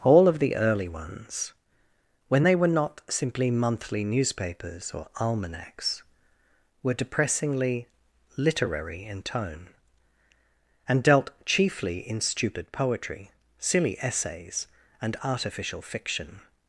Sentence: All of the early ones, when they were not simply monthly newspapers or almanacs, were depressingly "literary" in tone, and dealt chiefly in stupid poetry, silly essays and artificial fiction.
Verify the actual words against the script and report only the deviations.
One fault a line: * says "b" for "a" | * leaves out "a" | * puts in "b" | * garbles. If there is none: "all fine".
all fine